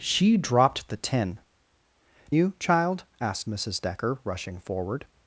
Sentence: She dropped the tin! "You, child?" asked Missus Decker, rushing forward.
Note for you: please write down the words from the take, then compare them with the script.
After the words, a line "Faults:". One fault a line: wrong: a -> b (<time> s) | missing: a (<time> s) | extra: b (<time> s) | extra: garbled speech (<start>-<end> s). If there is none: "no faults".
She dropped the tin! "You, child?" asked Missus Decker, rushing forward.
Faults:
no faults